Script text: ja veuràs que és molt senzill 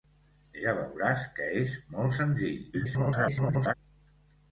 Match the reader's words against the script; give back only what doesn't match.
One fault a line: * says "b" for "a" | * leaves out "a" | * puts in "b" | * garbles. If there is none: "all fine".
* garbles